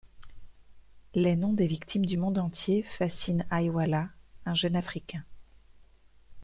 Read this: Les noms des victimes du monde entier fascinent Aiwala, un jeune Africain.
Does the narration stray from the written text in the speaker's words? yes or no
no